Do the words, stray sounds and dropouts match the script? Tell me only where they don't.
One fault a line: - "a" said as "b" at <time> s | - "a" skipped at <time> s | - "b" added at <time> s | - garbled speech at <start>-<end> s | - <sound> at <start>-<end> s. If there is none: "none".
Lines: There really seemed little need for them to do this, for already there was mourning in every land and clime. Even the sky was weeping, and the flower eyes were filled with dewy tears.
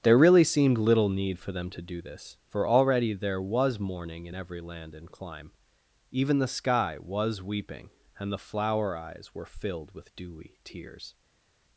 none